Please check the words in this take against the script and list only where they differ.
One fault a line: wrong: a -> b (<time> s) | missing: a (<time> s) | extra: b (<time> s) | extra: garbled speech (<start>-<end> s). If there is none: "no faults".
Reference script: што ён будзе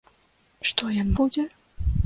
no faults